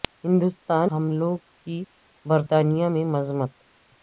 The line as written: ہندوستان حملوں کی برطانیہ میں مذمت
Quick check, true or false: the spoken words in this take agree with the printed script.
true